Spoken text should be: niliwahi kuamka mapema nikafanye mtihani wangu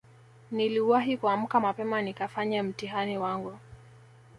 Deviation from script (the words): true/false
false